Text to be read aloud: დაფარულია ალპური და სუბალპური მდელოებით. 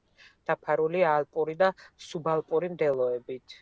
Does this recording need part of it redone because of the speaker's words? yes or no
no